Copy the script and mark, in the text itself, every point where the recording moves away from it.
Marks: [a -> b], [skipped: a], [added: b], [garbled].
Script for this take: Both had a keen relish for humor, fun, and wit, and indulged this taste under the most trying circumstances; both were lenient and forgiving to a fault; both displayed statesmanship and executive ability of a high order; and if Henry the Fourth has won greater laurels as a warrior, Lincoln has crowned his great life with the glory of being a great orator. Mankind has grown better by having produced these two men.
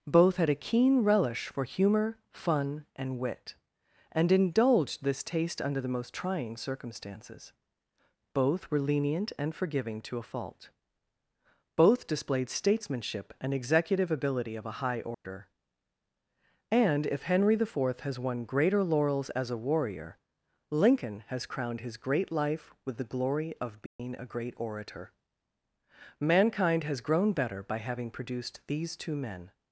Both had a keen relish for humor, fun, and wit, and indulged this taste under the most trying circumstances; both were lenient and forgiving to a fault; both displayed statesmanship and executive ability of a high order; and if Henry the Fourth has won greater laurels as a warrior, Lincoln has crowned his great life with the glory of being a great orator. Mankind has grown better by having produced these two men.